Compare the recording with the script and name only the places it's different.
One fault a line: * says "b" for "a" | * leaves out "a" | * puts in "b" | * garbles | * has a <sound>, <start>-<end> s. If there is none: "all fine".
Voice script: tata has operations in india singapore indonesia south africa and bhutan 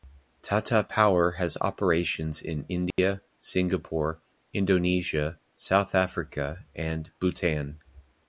* puts in "power"
* has a dropout, 2.9-3.0 s